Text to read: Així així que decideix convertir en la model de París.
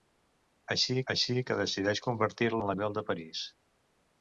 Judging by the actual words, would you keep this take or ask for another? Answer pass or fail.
pass